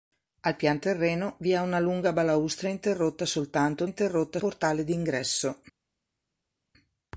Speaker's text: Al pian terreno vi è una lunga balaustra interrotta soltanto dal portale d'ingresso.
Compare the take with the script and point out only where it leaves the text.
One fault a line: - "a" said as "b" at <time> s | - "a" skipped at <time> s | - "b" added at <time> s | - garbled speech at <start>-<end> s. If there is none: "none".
- "dal" said as "interrotta" at 3.8 s